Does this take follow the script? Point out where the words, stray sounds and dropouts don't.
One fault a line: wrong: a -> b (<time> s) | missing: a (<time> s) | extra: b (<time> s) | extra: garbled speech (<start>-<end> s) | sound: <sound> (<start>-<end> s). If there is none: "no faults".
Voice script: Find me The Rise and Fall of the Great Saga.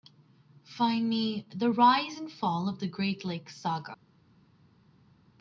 extra: Lakes (3.2 s)